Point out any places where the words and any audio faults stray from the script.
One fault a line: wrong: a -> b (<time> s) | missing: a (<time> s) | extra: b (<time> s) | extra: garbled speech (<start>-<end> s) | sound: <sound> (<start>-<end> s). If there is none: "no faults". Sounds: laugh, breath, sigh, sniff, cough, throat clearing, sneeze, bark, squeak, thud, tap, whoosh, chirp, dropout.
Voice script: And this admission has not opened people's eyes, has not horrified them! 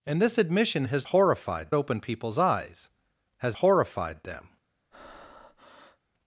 wrong: not -> horrified (1.1 s)
missing: not (3.6 s)
sound: breath (4.9-6.0 s)